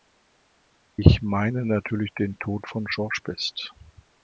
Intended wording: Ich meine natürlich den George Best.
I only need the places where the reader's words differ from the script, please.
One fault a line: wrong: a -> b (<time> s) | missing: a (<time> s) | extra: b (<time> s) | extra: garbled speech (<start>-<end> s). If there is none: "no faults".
extra: Tod von (2.4 s)